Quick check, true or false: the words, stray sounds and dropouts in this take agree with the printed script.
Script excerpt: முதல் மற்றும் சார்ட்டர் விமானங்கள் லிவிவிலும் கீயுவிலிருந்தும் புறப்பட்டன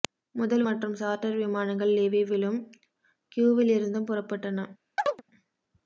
false